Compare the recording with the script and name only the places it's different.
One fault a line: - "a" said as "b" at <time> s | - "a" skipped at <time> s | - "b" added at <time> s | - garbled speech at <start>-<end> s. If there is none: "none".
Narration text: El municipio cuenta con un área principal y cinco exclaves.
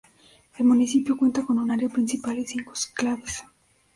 none